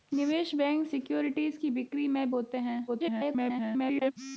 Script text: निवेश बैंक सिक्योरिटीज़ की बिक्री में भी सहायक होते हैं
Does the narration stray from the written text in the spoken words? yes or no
yes